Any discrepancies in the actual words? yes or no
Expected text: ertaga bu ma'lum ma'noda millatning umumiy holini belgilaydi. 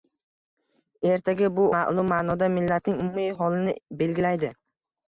no